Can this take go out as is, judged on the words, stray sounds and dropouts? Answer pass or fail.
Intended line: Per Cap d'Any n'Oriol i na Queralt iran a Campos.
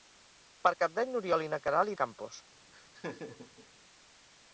fail